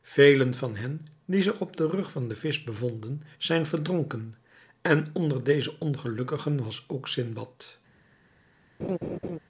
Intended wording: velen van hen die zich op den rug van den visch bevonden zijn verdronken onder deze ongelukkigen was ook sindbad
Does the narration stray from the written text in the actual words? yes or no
yes